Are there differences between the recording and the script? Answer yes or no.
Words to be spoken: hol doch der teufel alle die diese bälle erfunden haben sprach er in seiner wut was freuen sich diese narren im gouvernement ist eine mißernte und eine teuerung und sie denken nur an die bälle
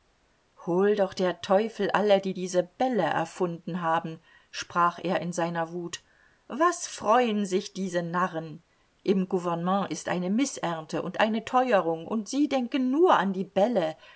no